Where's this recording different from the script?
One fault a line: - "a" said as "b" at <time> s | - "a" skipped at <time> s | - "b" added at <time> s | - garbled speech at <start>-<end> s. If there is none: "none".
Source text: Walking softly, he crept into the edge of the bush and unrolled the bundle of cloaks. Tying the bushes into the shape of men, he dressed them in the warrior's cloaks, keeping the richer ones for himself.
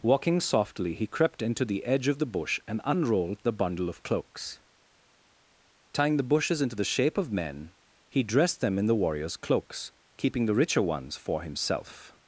none